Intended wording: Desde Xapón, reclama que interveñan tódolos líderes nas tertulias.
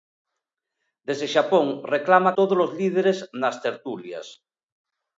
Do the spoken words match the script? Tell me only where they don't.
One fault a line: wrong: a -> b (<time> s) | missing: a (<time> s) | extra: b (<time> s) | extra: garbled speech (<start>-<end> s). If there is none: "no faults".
missing: que interveñan (2.4 s)